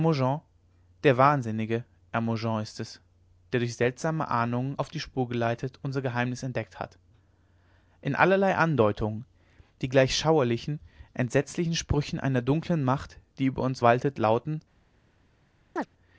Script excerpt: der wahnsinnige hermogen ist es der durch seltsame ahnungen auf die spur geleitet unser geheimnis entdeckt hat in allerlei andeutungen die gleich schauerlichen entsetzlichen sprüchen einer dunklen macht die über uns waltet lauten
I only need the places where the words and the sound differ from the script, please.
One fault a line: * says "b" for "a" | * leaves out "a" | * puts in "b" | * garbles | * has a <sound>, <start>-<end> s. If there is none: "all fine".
* has a chirp, 15.8-15.9 s